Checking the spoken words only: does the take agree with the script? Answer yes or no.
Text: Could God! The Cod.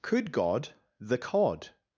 yes